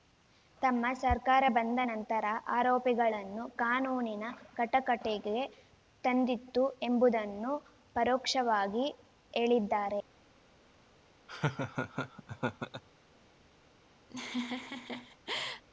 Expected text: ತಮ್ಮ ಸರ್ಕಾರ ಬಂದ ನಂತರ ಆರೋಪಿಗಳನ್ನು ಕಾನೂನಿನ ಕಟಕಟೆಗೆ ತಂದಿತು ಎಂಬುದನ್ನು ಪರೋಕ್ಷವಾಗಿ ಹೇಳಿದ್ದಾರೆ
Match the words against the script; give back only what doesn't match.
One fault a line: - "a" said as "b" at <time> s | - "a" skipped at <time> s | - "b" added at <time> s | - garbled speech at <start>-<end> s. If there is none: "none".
none